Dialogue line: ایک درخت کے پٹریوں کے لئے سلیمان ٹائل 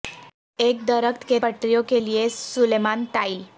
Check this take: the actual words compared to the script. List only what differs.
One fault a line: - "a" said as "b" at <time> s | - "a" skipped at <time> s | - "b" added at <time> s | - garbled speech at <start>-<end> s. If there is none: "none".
none